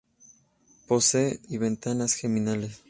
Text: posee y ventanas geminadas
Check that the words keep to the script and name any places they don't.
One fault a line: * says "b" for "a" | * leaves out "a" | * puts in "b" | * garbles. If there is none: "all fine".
all fine